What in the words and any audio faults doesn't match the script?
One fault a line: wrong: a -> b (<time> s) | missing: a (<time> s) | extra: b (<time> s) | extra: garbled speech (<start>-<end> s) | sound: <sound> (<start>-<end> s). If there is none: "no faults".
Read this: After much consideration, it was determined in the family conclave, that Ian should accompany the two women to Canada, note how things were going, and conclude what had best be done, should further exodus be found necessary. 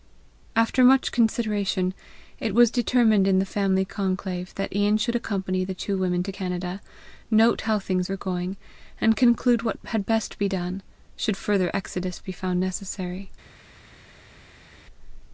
no faults